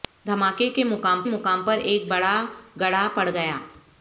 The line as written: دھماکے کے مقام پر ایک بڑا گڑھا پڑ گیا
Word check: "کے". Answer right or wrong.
right